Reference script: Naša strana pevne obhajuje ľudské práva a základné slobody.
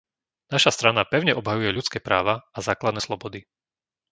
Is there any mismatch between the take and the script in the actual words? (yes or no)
no